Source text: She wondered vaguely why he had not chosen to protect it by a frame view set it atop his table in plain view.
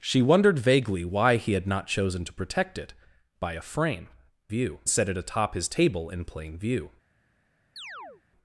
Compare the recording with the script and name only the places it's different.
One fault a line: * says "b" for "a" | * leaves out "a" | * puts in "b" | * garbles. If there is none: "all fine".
all fine